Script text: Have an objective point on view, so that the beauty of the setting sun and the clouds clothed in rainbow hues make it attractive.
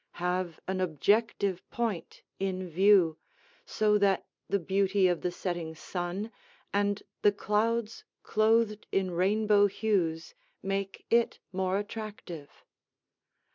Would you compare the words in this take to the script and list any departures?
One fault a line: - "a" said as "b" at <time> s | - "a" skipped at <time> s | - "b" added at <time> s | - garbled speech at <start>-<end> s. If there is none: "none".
- "on" said as "in" at 2.4 s
- "more" added at 11.5 s